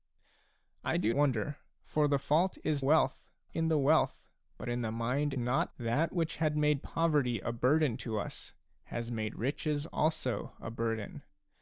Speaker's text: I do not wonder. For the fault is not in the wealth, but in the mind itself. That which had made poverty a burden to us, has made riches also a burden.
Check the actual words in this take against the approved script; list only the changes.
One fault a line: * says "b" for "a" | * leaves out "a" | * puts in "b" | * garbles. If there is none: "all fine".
* leaves out "not"
* says "wealth" for "not"
* says "not" for "itself"